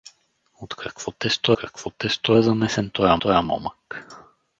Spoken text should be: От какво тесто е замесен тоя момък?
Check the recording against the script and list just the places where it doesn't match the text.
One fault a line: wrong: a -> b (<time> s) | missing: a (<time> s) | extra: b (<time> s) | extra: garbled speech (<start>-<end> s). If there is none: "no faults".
extra: какво тесто (1.5 s)
extra: тоя (3.2 s)